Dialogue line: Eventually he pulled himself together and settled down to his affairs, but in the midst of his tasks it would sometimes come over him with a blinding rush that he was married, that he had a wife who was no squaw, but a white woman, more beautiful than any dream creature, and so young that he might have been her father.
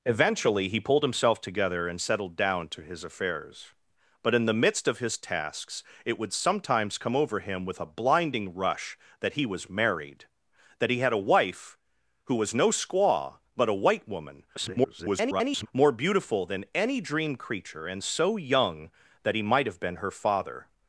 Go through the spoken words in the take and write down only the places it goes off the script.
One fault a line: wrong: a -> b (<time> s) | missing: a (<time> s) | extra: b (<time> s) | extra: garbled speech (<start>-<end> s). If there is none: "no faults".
extra: garbled speech (14.6-15.7 s)